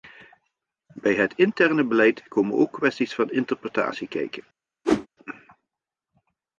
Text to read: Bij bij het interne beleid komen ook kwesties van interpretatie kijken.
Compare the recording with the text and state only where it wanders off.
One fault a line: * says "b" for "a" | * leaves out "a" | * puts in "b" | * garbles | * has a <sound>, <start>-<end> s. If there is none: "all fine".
* leaves out "bij"
* has a whoosh, 4.8-5.1 s